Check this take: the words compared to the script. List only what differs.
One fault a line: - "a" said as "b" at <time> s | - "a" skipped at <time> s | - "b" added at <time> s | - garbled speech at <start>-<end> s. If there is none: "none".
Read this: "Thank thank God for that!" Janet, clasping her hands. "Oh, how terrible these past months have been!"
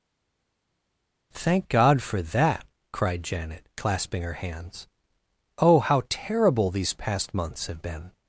- "thank" skipped at 1.7 s
- "cried" added at 2.9 s